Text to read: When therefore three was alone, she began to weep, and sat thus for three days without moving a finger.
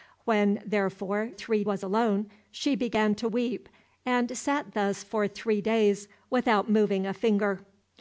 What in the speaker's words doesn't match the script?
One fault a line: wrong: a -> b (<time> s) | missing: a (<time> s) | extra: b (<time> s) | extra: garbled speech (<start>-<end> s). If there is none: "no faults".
no faults